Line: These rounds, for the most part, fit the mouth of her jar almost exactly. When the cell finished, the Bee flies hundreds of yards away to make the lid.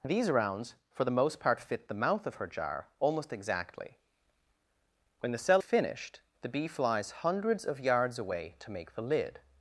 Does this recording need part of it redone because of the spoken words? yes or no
no